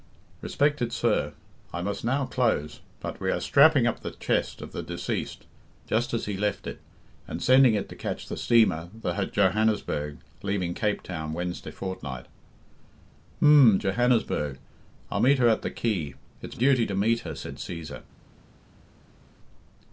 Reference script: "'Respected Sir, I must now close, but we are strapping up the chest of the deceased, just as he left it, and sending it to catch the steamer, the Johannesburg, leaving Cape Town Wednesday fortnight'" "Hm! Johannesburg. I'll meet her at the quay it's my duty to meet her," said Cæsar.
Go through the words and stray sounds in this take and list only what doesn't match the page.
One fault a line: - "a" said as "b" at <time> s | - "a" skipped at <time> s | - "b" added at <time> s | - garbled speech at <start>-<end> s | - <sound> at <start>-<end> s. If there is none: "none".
- "my" skipped at 16.6 s